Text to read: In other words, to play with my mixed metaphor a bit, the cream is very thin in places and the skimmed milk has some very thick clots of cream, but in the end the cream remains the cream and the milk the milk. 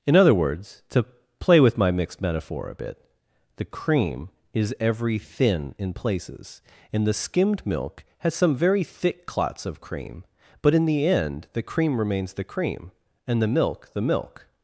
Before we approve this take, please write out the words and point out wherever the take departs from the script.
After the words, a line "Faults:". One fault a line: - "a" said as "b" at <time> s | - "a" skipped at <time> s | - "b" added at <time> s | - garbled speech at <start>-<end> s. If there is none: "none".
In other words, to play with my mixed metaphor a bit, the cream is every thin in places and the skimmed milk has some very thick clots of cream, but in the end the cream remains the cream and the milk the milk.
Faults:
- "very" said as "every" at 4.8 s